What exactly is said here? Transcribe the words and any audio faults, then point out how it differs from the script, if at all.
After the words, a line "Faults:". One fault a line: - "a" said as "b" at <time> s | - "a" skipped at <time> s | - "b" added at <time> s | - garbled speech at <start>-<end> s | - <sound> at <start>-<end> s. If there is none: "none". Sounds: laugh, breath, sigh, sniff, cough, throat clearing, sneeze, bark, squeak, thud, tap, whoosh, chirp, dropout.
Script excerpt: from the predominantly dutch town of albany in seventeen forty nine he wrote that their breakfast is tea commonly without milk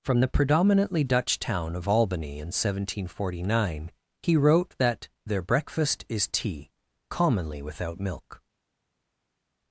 from the predominantly dutch town of albany in seventeen forty nine he wrote that their breakfast is tea commonly without milk
Faults:
none